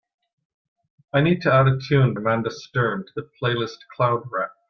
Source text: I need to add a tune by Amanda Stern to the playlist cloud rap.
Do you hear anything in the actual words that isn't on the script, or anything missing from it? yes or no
yes